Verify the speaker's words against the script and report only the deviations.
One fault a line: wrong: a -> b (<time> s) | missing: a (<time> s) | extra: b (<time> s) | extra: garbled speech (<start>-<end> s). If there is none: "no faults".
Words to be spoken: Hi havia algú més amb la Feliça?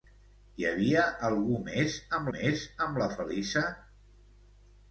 extra: més amb (2.3 s)